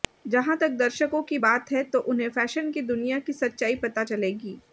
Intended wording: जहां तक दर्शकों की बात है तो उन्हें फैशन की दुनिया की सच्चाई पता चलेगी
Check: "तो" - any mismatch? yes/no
no